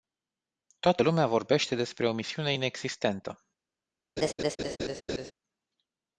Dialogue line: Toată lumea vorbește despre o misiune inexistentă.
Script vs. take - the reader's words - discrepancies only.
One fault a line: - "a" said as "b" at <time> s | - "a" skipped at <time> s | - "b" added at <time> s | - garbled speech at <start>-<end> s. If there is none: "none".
none